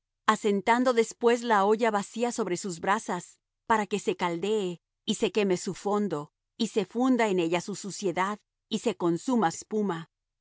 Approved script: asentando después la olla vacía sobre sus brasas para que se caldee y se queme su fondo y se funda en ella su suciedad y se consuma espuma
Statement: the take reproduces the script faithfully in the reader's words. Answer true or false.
true